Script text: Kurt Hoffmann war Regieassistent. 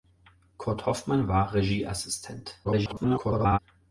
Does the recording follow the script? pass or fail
fail